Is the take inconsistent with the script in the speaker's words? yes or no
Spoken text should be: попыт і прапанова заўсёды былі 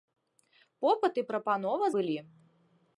yes